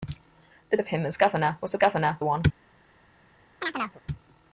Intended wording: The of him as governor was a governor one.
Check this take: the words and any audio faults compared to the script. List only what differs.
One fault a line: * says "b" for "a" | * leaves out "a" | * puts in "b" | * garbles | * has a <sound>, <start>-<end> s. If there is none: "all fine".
* has a chirp, 3.6-4.0 s